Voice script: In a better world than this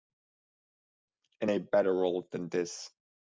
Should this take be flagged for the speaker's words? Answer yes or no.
no